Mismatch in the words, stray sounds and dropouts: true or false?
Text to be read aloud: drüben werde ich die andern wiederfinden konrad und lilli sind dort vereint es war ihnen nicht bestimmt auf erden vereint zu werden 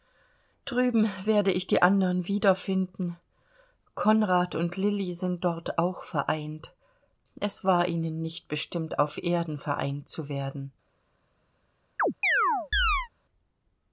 true